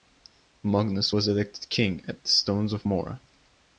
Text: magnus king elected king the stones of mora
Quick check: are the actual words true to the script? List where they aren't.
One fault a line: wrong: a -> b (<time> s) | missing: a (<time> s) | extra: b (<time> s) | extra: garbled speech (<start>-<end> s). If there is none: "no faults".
wrong: king -> was (1.1 s)
extra: at (2.1 s)